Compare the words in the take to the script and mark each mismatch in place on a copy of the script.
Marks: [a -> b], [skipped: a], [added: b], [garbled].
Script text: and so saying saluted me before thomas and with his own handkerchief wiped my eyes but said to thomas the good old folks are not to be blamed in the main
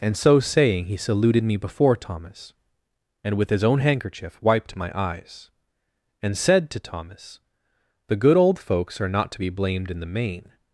and so saying [added: he] saluted me before thomas and with his own handkerchief wiped my eyes [but -> and] said to thomas the good old folks are not to be blamed in the main